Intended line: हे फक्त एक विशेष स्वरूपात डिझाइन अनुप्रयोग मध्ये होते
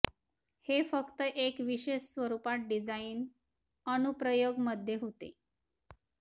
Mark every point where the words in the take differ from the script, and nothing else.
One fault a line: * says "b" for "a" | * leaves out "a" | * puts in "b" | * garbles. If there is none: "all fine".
all fine